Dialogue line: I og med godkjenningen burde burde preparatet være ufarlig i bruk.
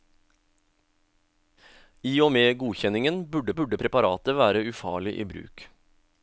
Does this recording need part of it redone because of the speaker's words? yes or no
no